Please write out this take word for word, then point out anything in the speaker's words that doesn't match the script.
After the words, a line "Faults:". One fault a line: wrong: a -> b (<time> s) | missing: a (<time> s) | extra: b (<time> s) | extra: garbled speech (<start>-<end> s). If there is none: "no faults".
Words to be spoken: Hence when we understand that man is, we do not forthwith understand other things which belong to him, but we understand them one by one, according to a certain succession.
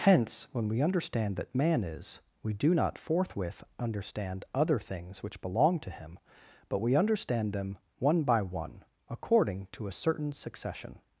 Hence when we understand that man is, we do not forthwith understand other things which belong to him, but we understand them one by one, according to a certain succession.
Faults:
no faults